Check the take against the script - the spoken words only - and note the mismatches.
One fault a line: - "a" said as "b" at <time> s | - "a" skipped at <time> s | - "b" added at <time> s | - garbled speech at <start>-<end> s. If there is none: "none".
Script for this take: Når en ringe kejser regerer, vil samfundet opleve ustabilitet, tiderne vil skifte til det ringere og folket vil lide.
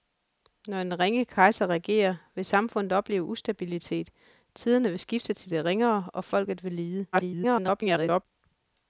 - garbled speech at 7.1-8.3 s